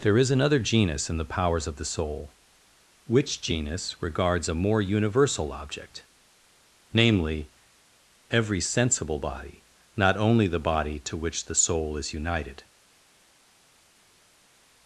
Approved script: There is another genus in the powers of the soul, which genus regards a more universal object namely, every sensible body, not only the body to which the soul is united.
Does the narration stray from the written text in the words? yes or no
no